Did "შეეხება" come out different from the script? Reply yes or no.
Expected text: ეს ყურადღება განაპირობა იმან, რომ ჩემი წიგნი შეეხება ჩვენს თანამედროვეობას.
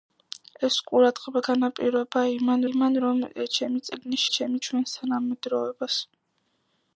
yes